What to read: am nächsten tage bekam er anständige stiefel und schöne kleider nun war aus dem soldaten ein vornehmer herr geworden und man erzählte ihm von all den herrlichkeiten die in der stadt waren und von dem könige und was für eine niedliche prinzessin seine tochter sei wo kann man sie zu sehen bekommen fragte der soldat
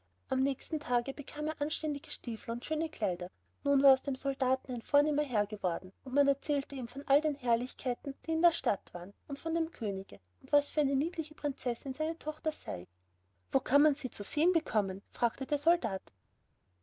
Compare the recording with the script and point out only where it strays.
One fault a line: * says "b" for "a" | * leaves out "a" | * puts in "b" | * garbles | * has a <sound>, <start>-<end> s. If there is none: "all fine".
all fine